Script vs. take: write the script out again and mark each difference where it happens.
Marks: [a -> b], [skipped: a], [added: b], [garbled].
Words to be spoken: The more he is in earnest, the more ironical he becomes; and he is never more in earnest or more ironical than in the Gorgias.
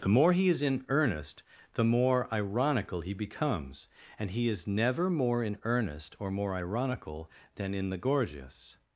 The more he is in earnest, the more ironical he becomes; and he is never more in earnest or more ironical than in the Gorgias.